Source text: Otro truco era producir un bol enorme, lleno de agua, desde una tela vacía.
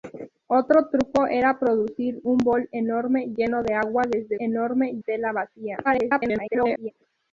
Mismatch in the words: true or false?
true